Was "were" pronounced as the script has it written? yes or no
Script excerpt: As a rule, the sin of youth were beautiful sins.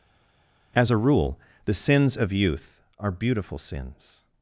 no